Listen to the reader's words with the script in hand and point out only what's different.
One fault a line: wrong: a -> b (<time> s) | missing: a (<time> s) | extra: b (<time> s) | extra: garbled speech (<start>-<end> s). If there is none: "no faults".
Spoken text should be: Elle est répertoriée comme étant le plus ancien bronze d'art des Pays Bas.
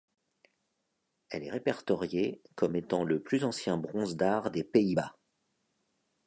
no faults